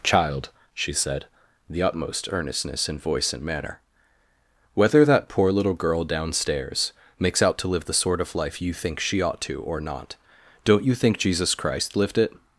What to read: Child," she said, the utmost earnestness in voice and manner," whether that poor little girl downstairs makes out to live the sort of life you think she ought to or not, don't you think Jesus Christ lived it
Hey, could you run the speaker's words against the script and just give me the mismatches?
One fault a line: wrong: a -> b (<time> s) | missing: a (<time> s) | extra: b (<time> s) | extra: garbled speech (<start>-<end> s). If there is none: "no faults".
no faults